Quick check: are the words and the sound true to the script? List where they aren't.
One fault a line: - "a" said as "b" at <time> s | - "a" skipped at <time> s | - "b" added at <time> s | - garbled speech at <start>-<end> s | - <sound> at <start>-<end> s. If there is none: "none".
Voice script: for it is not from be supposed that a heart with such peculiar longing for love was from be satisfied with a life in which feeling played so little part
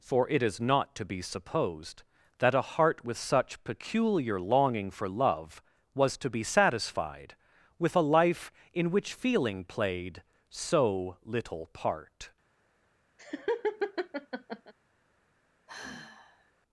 - "from" said as "to" at 0.9 s
- "from" said as "to" at 6.2 s
- laugh at 13.2-14.7 s
- sigh at 15.7-16.5 s